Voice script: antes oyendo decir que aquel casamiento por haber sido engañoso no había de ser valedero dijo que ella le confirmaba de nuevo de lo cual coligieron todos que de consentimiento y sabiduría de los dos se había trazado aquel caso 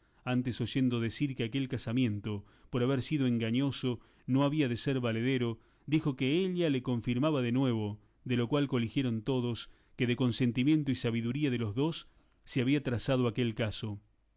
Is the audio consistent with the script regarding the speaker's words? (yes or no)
yes